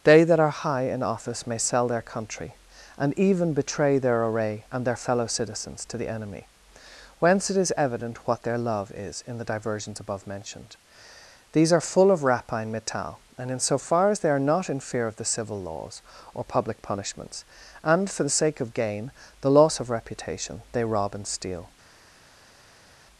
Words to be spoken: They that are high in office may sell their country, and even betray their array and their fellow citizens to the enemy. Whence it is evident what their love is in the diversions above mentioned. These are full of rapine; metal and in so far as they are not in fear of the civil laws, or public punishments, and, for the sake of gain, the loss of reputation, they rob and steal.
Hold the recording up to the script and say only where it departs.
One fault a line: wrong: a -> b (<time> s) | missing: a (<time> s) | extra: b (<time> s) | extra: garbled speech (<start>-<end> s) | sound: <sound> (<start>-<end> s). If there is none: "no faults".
no faults